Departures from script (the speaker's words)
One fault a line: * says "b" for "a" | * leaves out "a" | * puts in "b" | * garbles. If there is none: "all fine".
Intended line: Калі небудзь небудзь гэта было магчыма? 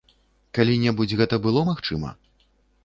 * leaves out "небудзь"